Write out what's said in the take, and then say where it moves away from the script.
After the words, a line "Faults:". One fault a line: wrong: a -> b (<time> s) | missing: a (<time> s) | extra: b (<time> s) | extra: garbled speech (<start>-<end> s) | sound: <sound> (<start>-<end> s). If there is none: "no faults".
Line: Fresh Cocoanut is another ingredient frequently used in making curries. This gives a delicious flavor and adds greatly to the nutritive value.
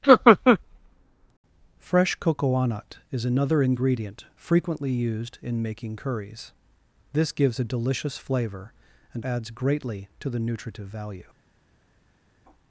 Fresh Cocoanut is another ingredient frequently used in making curries. This gives a delicious flavor and adds greatly to the nutritive value.
Faults:
no faults